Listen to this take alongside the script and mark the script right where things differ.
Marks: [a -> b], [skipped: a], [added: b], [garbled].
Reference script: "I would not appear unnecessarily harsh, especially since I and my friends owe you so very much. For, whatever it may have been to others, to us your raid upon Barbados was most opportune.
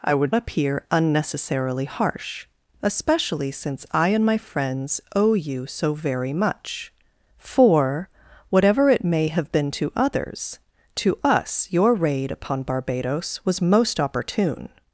"I would [skipped: not] appear unnecessarily harsh, especially since I and my friends owe you so very much. For, whatever it may have been to others, to us your raid upon Barbados was most opportune.